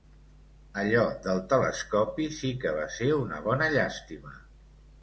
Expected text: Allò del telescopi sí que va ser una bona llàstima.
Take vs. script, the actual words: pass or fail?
pass